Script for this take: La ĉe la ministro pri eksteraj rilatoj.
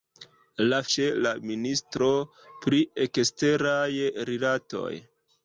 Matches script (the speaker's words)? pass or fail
pass